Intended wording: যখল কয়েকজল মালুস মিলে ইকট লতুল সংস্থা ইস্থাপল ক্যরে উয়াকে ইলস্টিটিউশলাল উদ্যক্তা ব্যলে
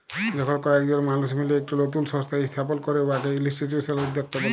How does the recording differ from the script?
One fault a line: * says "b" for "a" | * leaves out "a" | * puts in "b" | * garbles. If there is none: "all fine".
all fine